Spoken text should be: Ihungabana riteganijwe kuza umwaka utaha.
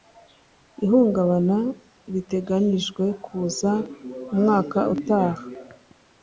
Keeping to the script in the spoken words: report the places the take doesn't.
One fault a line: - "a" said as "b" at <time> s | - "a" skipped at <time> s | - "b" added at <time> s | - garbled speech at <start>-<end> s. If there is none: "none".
none